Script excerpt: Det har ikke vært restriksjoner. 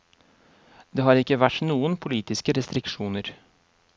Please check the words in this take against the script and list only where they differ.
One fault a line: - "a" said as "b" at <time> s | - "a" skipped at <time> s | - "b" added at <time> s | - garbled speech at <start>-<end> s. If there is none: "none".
- "noen politiske" added at 1.7 s